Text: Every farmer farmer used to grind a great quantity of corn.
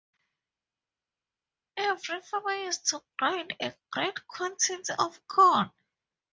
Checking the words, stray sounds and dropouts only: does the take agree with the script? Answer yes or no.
no